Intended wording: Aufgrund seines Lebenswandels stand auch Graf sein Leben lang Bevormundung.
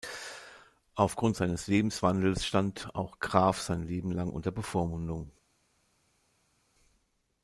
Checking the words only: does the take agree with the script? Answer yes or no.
no